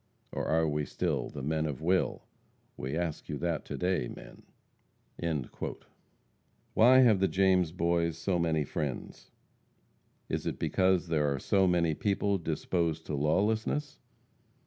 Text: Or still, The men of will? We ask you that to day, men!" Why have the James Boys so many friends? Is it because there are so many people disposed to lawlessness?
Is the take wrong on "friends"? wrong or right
right